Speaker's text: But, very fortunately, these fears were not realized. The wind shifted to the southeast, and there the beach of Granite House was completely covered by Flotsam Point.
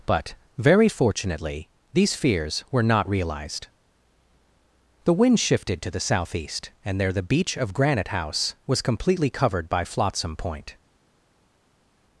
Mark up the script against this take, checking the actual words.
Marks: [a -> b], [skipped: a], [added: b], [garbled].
But, very fortunately, these fears were not realized. The wind shifted to the southeast, and there the beach of Granite House was completely covered by Flotsam Point.